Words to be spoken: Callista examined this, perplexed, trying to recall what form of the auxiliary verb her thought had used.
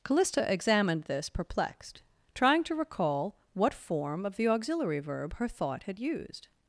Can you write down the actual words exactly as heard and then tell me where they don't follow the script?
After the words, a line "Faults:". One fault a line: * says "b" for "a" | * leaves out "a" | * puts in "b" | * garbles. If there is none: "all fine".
Callista examined this, perplexed, trying to recall what form of the auxiliary verb her thought had used.
Faults:
all fine